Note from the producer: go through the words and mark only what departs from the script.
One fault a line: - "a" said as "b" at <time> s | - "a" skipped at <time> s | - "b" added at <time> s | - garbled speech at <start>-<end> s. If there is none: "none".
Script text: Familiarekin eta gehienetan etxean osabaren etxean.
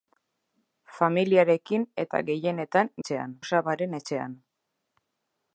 none